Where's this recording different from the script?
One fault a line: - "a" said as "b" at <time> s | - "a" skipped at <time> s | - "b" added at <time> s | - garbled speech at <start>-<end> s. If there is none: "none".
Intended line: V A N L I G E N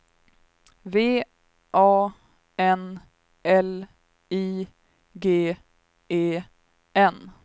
none